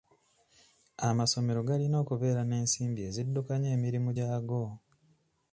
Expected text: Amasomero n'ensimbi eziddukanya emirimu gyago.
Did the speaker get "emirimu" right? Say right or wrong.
right